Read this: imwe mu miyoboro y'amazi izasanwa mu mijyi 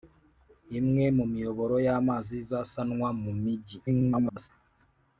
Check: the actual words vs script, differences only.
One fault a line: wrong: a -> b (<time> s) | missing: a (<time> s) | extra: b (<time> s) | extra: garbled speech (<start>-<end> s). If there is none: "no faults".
extra: garbled speech (3.9-4.5 s)